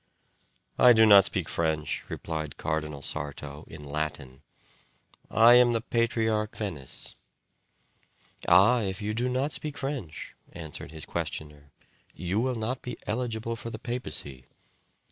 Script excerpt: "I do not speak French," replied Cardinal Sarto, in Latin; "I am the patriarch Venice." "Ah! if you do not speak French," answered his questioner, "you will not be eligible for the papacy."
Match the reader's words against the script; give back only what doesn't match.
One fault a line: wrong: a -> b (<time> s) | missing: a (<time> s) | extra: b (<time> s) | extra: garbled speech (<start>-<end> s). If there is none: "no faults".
no faults